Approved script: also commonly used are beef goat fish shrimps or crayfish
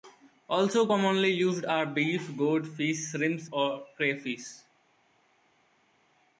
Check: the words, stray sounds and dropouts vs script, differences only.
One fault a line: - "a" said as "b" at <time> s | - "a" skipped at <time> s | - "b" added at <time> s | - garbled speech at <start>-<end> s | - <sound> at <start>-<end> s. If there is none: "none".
none